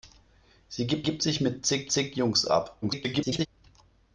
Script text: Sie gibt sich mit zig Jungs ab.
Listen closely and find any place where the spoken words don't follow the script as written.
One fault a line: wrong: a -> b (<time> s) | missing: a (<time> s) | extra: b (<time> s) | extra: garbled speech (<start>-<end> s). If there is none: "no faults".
extra: gibt (1.0 s)
extra: zig (1.9 s)
extra: garbled speech (2.8-3.5 s)